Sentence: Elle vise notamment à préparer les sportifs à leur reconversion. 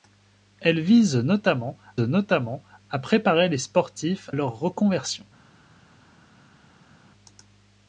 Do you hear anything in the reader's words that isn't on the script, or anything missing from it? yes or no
yes